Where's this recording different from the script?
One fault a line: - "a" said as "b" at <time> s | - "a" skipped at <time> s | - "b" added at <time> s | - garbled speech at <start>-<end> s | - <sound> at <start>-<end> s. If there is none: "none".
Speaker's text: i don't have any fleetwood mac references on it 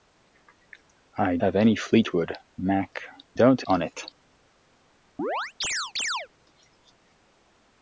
- "don't" skipped at 1.4 s
- "references" said as "don't" at 3.3 s
- chirp at 5.2-6.3 s